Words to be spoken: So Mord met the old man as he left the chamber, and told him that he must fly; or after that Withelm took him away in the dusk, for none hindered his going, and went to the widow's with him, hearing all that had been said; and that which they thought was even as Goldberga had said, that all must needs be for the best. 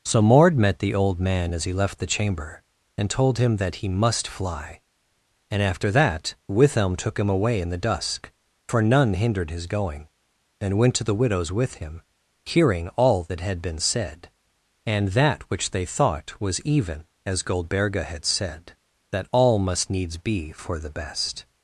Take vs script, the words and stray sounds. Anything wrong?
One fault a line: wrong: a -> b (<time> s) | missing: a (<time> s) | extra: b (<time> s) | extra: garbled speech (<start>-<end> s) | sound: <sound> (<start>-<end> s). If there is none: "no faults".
wrong: or -> and (5.5 s)